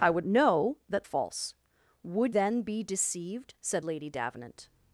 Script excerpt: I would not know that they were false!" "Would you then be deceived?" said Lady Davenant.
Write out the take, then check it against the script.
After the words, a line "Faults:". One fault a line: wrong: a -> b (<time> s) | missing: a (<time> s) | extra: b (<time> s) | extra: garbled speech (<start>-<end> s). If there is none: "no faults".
I would know that false!" "Would then be deceived?" said Lady Davenant.
Faults:
missing: not (0.2 s)
missing: they were (1.1 s)
missing: you (2.4 s)